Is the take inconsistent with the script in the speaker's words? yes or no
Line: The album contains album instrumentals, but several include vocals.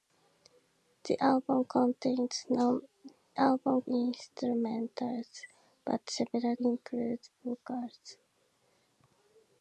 no